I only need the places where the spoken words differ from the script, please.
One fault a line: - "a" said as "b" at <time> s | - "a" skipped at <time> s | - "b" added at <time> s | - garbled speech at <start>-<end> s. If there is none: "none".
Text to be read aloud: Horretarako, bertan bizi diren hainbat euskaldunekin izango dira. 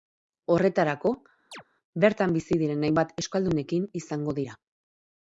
none